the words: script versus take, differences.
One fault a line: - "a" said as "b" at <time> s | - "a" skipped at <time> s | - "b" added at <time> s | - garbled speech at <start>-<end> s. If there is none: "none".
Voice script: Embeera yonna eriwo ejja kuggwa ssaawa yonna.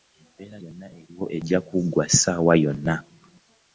none